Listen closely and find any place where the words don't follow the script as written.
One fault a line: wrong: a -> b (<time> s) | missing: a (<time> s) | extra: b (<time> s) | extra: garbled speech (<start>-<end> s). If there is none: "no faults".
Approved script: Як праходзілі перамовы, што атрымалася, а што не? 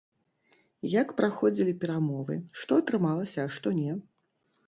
no faults